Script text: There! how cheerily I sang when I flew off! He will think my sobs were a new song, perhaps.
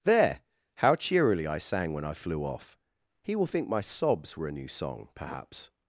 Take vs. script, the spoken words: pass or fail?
pass